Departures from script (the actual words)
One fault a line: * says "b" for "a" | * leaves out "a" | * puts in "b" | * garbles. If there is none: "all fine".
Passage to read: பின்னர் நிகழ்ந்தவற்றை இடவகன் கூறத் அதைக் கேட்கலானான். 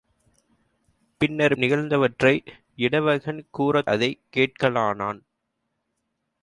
all fine